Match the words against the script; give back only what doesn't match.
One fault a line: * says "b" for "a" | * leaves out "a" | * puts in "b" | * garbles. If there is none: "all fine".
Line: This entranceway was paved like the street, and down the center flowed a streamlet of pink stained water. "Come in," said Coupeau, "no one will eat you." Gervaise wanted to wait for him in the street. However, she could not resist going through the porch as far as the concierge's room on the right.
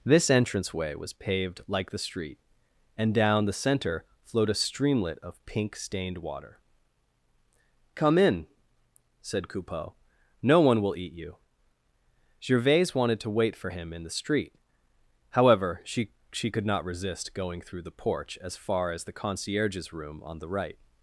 * puts in "she"